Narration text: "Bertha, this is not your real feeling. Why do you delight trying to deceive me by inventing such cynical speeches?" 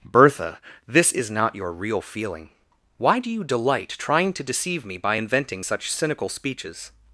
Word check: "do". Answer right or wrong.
right